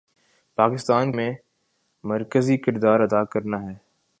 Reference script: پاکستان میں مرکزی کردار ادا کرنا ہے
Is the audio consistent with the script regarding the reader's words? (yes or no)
yes